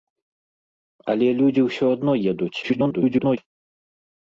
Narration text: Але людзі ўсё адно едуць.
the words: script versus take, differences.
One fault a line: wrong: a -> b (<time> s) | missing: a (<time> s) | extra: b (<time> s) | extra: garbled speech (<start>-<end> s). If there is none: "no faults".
extra: garbled speech (2.6-3.4 s)